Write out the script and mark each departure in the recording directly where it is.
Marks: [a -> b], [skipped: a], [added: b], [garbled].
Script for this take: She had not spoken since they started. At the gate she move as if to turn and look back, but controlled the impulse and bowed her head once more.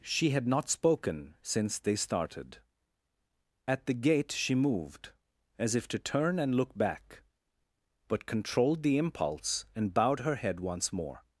She had not spoken since they started. At the gate she [move -> moved] as if to turn and look back, but controlled the impulse and bowed her head once more.